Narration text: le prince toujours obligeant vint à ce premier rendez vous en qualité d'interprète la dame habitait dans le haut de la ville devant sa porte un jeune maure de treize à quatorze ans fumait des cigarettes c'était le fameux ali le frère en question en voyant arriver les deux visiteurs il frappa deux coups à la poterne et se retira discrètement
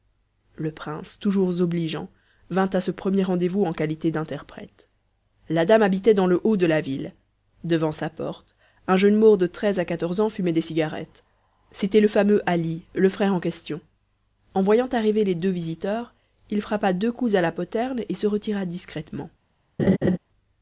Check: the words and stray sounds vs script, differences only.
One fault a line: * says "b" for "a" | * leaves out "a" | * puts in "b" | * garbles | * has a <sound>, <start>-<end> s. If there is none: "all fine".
* has a laugh, 19.8-20.2 s